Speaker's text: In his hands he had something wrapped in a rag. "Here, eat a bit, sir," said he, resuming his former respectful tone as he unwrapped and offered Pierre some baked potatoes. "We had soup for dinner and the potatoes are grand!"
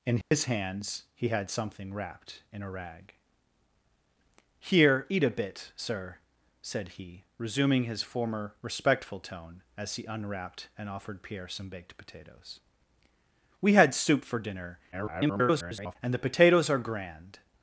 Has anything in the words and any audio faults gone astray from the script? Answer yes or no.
yes